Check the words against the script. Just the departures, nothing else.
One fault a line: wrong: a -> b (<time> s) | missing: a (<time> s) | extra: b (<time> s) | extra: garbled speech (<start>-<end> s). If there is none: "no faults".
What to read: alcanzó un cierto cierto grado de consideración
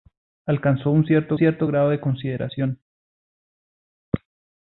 no faults